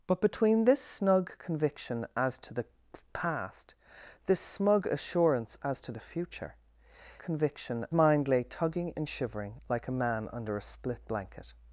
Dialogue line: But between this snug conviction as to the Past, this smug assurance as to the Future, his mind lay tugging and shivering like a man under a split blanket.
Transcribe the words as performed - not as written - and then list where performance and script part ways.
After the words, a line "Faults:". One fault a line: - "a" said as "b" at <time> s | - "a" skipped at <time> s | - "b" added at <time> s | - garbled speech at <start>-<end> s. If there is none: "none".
But between this snug conviction as to the Past, this smug assurance as to the Future, conviction mind lay tugging and shivering like a man under a split blanket.
Faults:
- "his" said as "conviction" at 7.2 s